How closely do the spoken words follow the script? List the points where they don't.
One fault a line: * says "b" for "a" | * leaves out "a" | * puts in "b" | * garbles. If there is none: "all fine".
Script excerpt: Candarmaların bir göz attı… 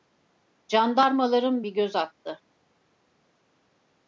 all fine